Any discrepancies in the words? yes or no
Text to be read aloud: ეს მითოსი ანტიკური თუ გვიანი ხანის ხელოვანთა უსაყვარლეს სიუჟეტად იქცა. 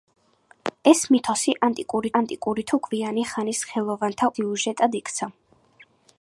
yes